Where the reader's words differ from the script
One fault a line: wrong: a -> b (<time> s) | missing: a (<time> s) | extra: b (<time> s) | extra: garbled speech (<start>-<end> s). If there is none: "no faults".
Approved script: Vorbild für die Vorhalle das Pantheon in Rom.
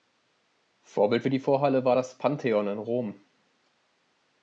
extra: war (1.8 s)